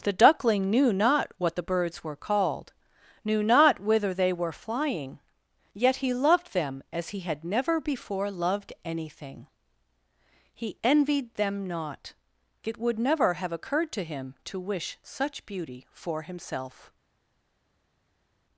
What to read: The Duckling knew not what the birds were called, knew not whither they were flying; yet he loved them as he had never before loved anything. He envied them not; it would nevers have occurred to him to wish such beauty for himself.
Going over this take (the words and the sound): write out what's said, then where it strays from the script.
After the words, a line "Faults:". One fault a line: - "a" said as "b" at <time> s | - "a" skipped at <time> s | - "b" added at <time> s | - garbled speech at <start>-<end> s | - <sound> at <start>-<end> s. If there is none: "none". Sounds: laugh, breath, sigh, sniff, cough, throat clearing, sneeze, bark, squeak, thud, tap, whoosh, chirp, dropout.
The Duckling knew not what the birds were called, knew not whither they were flying; yet he loved them as he had never before loved anything. He envied them not; it would never have occurred to him to wish such beauty for himself.
Faults:
- "nevers" said as "never" at 13.0 s